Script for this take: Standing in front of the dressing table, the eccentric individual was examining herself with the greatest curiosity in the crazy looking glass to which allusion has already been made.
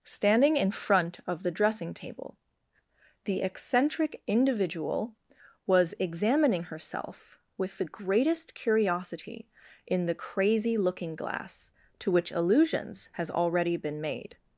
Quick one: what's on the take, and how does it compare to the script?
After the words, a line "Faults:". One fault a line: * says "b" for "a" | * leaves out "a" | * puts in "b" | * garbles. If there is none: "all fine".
Standing in front of the dressing table, the eccentric individual was examining herself with the greatest curiosity in the crazy looking glass to which allusions has already been made.
Faults:
* says "allusions" for "allusion"